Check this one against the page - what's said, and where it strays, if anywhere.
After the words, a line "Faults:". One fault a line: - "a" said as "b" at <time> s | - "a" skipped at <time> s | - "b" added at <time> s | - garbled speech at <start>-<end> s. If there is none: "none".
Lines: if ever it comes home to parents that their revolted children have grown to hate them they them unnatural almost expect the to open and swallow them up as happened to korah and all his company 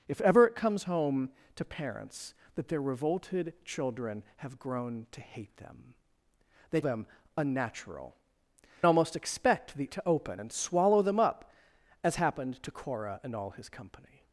if ever it comes home to parents that their revolted children have grown to hate them they them unnatural almost expect the to open and swallow them up as happened to korah and all his company
Faults:
none